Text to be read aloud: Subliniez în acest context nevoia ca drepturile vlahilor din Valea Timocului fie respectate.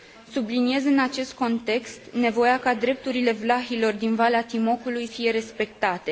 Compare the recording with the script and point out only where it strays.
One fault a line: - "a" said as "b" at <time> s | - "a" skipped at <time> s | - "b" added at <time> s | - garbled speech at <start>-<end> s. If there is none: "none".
none